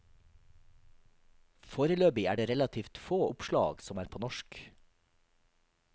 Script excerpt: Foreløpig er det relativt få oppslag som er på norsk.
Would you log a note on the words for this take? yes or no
no